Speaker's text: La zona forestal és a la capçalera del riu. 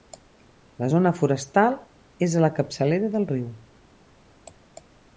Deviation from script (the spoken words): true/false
false